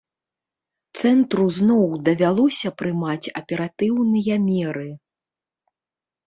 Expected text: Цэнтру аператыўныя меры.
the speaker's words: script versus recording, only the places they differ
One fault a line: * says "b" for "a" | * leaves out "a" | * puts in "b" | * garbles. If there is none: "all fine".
* puts in "зноў давялося прымаць"